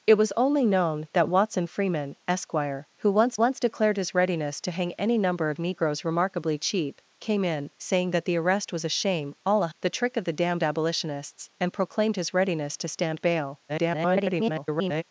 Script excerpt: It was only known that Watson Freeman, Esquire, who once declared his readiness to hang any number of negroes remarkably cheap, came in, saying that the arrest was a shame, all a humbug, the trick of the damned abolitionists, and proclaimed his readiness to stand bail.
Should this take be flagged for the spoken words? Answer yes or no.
yes